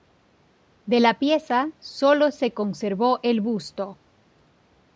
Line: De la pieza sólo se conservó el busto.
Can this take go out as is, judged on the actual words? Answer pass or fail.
pass